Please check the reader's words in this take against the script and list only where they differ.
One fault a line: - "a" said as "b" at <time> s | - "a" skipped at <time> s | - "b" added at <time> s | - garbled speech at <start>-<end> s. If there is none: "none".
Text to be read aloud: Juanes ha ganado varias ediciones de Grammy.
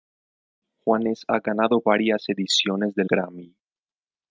none